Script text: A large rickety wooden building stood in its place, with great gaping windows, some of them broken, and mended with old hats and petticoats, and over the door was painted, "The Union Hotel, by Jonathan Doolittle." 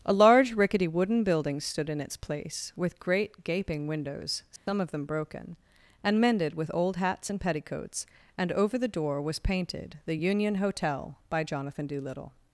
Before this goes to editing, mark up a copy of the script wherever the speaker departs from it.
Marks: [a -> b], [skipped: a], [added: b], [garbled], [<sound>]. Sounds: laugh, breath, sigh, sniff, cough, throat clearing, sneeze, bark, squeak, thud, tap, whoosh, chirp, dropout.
A large rickety wooden building stood in its place, with great gaping windows, some [dropout] of them broken, and mended with old hats and petticoats, and over the door was painted, "The Union Hotel, by Jonathan Doolittle."